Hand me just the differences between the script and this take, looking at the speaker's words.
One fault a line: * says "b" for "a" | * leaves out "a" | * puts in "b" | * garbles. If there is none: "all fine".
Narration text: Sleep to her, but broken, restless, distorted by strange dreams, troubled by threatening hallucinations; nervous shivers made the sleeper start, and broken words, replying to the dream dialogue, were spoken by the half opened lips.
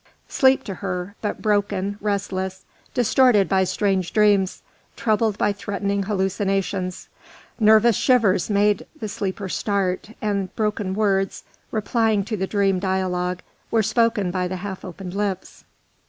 all fine